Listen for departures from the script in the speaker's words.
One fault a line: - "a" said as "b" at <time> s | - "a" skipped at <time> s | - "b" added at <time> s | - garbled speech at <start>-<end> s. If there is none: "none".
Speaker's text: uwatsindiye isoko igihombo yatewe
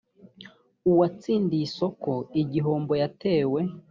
none